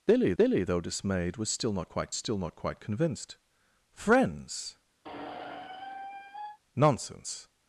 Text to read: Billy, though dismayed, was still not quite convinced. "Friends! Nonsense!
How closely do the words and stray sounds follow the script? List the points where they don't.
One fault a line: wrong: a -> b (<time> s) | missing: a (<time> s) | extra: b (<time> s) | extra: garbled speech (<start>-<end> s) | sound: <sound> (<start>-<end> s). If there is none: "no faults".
extra: billy (0.4 s)
extra: still not quite (2.1 s)
sound: squeak (5.0-6.6 s)